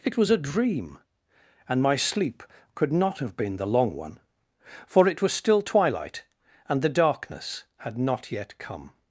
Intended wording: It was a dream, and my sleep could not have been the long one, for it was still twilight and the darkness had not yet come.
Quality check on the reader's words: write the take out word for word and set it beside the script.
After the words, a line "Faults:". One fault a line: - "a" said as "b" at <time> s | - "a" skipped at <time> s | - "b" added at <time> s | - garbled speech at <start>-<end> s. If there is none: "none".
It was a dream, and my sleep could not have been the long one, for it was still twilight and the darkness had not yet come.
Faults:
none